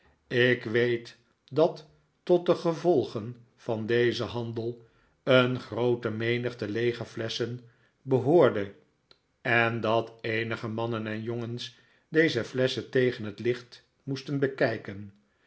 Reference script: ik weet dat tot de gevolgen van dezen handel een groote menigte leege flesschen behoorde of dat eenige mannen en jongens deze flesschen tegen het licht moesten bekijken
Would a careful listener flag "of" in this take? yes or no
yes